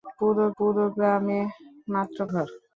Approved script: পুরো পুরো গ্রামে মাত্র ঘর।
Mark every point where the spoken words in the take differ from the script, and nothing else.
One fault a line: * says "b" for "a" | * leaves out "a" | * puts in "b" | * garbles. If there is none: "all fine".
all fine